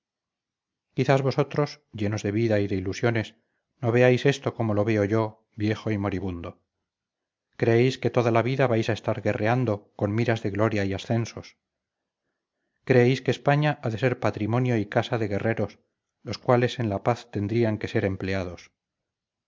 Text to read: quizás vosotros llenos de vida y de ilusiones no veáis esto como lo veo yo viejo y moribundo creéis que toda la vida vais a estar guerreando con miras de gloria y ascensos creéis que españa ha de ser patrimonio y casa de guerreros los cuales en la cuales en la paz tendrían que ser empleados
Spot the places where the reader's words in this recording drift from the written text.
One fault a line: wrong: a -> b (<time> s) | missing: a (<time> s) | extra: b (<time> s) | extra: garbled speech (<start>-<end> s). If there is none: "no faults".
missing: cuales en la (17.0 s)